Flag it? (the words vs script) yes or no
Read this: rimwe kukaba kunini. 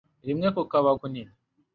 no